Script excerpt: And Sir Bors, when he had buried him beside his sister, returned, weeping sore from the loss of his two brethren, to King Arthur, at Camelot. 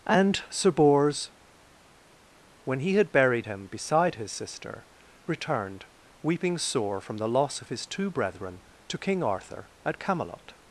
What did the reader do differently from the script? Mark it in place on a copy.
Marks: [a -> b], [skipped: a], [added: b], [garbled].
And Sir Bors, when he had buried him beside his sister, returned, weeping sore from the loss of his two brethren, to King Arthur, at Camelot.